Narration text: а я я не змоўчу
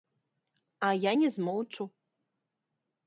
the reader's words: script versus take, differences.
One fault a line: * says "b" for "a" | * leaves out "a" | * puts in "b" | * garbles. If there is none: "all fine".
* leaves out "я"